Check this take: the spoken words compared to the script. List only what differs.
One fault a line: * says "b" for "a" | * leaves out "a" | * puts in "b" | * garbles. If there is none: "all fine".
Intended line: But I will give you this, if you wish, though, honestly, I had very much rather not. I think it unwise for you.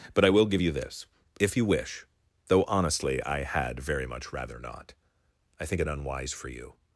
all fine